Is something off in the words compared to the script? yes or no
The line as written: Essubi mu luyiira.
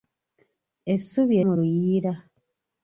no